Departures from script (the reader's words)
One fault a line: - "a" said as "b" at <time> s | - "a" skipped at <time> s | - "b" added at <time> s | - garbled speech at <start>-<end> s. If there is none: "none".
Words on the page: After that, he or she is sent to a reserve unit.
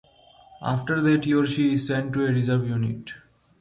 none